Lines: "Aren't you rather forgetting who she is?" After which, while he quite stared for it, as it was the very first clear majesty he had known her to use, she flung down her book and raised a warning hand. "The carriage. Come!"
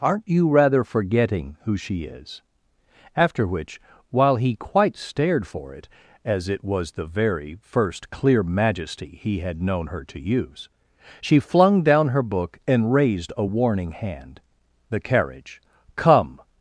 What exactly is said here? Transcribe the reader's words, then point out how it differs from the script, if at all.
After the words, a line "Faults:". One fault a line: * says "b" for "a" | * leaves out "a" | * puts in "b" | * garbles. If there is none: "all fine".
"Aren't you rather forgetting who she is?" After which, while he quite stared for it, as it was the very first clear majesty he had known her to use, she flung down her book and raised a warning hand. "The carriage. Come!"
Faults:
all fine